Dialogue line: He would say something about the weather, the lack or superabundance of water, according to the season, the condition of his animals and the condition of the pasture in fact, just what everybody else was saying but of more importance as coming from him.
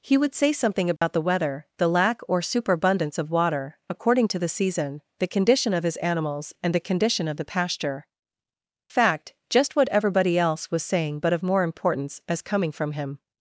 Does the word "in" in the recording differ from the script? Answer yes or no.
yes